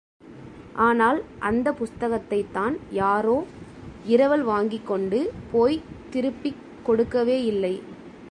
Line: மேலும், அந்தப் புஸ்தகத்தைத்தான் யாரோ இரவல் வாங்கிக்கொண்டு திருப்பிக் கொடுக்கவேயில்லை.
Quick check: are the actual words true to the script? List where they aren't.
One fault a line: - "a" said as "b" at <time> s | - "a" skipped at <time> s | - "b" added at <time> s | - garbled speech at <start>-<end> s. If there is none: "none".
- "மேலும்" said as "ஆனால்" at 0.7 s
- "போய்த்" added at 5.5 s